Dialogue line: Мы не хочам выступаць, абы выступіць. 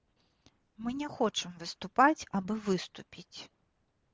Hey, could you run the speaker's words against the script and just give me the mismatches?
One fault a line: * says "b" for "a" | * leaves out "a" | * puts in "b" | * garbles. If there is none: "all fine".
all fine